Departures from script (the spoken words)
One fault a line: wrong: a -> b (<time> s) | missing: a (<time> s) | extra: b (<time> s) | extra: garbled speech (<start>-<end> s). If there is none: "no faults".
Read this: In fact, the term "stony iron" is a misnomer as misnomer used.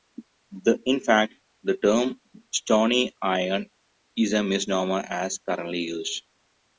wrong: misnomer -> currently (5.5 s)